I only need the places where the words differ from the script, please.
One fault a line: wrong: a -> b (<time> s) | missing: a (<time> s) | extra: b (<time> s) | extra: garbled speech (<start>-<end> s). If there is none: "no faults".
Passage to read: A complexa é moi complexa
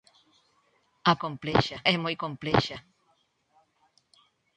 no faults